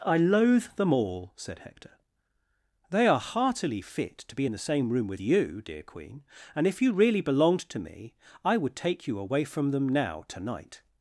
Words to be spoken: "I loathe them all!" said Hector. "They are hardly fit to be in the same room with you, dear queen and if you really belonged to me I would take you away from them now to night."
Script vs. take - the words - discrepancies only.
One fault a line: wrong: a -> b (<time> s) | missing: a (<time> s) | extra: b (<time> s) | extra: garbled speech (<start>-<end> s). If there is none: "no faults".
wrong: hardly -> heartily (3.2 s)